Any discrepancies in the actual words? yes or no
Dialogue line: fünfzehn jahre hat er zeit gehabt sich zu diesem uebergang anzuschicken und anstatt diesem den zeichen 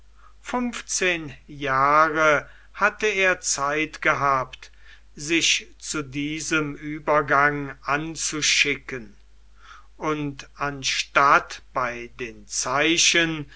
yes